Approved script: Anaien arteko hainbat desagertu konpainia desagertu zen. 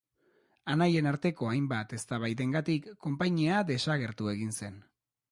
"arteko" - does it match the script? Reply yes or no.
yes